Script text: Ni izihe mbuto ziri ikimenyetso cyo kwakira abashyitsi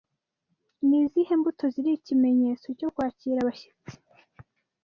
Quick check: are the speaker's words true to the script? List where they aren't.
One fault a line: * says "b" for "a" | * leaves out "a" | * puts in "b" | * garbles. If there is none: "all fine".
all fine